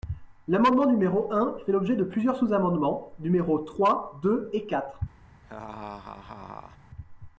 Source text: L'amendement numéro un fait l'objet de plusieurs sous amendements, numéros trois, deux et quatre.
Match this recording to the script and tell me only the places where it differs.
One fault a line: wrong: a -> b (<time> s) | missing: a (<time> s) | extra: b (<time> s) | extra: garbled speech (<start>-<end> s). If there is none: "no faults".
no faults